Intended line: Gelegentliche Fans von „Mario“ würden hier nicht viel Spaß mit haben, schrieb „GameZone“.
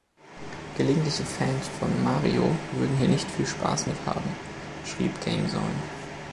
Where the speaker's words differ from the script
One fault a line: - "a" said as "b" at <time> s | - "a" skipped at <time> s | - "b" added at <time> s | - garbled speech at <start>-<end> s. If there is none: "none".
none